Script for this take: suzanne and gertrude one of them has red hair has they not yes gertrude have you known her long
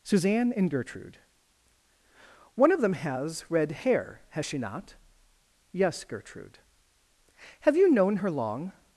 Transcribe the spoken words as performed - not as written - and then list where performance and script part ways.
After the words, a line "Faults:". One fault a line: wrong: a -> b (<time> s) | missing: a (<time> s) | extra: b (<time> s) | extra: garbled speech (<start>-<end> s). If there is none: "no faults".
suzanne and gertrude one of them has red hair has she not yes gertrude have you known her long
Faults:
wrong: they -> she (4.4 s)